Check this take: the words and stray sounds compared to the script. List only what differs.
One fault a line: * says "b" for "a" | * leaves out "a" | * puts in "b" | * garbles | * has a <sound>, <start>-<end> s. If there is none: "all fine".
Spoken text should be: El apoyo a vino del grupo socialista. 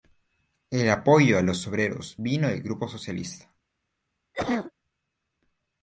* puts in "los obreros"
* has a cough, 4.3-4.7 s